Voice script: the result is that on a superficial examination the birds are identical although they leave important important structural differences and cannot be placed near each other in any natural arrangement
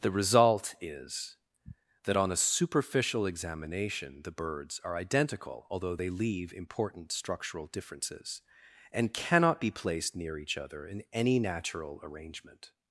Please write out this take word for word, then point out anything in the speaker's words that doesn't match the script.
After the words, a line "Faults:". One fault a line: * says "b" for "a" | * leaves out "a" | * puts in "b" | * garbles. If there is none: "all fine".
the result is that on a superficial examination the birds are identical although they leave important structural differences and cannot be placed near each other in any natural arrangement
Faults:
* leaves out "important"